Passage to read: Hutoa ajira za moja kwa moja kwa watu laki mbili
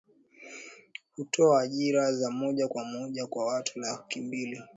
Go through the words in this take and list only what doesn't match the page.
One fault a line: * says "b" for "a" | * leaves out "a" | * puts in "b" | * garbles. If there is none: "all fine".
all fine